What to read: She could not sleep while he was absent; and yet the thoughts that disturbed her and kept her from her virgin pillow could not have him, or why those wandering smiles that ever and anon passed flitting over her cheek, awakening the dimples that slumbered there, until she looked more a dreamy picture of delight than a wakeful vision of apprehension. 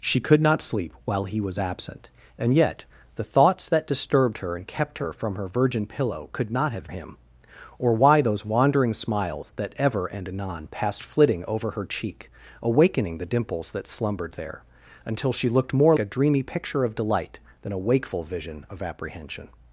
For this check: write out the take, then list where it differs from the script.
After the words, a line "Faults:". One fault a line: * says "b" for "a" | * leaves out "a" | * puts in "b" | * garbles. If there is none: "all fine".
She could not sleep while he was absent; and yet the thoughts that disturbed her and kept her from her virgin pillow could not have him, or why those wandering smiles that ever and anon passed flitting over her cheek, awakening the dimples that slumbered there, until she looked more a dreamy picture of delight than a wakeful vision of apprehension.
Faults:
all fine